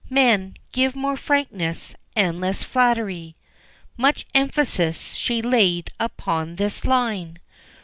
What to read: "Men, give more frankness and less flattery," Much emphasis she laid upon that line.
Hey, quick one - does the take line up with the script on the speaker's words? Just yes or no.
no